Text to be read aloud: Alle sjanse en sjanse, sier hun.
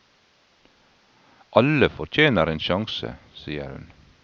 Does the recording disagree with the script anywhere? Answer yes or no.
yes